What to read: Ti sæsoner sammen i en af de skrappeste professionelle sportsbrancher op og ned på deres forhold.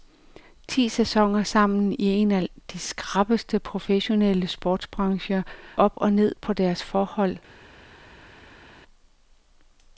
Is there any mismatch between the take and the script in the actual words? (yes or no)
no